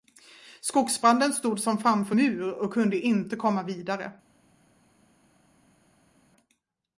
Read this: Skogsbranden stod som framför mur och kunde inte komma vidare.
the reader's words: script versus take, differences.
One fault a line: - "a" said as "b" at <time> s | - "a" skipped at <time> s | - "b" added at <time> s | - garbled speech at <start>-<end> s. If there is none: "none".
none